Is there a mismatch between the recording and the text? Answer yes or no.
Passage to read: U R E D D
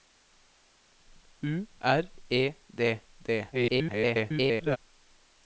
yes